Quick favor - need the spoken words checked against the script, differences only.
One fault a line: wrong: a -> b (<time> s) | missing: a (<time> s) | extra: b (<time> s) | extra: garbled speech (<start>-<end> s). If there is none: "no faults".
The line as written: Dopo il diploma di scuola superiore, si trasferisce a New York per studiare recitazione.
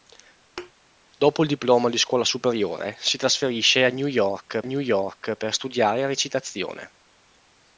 extra: New York (4.6 s)